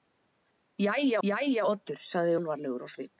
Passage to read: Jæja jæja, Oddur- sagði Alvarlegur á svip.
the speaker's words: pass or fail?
pass